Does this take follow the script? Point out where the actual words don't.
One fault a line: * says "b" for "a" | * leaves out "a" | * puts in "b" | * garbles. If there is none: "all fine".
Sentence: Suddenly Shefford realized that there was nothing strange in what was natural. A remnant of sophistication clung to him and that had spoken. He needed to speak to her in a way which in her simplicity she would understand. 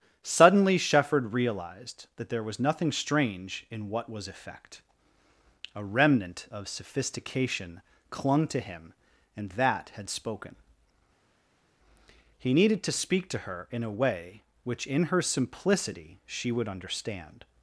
* says "effect" for "natural"